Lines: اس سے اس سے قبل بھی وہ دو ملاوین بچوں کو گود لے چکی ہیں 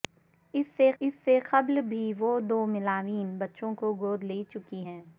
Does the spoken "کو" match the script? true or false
true